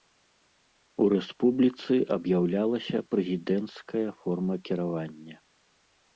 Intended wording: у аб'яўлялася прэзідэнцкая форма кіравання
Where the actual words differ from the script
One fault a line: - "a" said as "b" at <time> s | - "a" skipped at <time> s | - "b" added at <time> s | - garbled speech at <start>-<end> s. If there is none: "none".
- "рэспубліцы" added at 1.1 s